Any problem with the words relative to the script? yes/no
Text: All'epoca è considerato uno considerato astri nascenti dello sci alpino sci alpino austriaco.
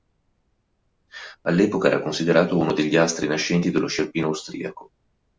yes